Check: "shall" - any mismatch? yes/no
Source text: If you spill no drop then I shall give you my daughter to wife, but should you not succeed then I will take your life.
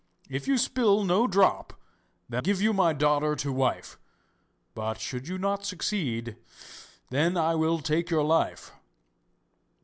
yes